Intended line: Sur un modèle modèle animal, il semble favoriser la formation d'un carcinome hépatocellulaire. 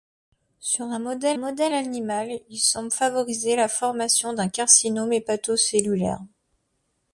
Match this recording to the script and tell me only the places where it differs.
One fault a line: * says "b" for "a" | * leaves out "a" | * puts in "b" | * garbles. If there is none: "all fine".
all fine